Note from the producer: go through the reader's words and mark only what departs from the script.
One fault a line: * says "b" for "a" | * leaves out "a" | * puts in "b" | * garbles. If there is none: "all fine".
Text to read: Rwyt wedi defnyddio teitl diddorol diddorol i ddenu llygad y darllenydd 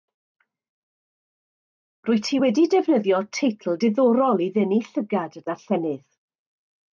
* puts in "ti"
* leaves out "diddorol"